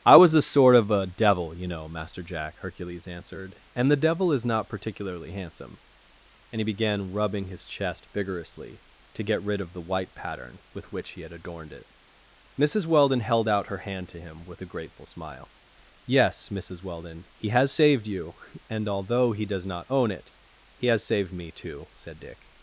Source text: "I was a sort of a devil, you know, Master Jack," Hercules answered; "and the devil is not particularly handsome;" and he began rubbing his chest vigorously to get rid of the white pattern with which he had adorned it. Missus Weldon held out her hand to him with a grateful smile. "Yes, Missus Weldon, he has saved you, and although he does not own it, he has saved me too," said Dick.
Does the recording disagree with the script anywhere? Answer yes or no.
no